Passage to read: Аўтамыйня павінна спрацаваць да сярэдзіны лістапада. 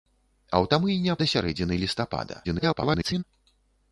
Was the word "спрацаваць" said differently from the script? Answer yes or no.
yes